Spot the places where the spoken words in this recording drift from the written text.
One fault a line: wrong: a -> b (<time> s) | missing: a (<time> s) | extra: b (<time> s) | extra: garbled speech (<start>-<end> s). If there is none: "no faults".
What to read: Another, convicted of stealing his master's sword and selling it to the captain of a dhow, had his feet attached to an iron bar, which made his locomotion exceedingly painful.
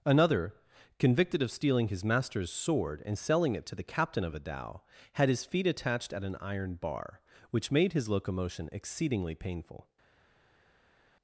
wrong: to -> at (6.1 s)